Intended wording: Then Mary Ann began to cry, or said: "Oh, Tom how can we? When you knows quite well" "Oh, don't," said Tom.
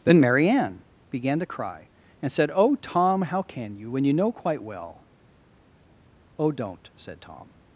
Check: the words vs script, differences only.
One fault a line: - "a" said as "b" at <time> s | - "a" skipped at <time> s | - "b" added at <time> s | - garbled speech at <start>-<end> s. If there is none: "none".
- "or" said as "and" at 2.2 s
- "we" said as "you" at 3.8 s
- "knows" said as "know" at 4.1 s